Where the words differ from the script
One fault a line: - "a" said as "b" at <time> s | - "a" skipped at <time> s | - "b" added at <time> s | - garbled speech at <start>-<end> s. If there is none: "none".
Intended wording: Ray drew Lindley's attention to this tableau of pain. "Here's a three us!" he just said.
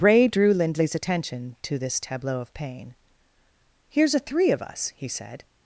- "of" added at 4.5 s
- "just" skipped at 5.1 s